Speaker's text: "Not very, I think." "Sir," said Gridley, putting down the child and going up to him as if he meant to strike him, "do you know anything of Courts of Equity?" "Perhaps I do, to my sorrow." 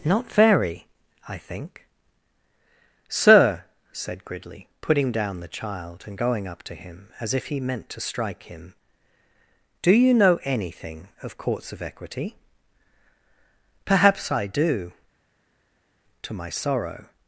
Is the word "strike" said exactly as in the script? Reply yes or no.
yes